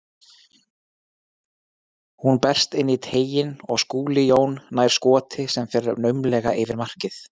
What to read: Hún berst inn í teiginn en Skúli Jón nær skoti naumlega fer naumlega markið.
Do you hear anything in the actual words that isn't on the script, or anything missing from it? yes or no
yes